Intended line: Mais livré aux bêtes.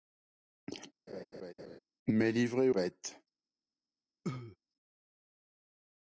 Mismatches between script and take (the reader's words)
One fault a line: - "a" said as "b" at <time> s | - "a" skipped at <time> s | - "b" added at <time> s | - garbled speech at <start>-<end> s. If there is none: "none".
- "aux" skipped at 2.7 s